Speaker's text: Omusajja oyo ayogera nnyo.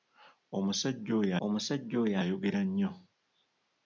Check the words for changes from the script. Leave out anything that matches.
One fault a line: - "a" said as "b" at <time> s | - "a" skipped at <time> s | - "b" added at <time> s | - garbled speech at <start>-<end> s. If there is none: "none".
- "omusajja oyo" added at 1.4 s